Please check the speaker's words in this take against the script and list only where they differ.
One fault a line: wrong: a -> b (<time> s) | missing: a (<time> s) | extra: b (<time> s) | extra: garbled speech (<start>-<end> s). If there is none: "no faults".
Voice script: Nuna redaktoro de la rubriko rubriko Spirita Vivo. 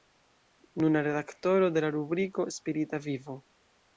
missing: rubriko (2.5 s)